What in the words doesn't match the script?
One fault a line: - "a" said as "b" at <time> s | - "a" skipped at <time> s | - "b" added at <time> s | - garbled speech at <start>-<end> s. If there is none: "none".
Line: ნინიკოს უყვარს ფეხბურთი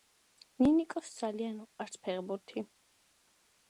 - "ძალიან" added at 1.2 s